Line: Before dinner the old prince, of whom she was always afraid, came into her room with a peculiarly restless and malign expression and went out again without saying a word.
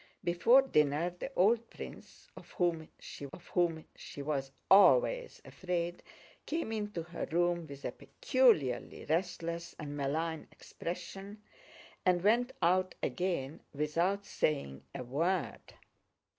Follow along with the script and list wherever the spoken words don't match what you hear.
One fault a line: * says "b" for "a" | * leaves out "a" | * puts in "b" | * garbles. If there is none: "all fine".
* puts in "of whom she"